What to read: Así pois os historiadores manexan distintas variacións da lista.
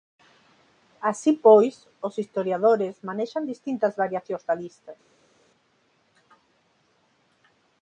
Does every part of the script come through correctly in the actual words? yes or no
yes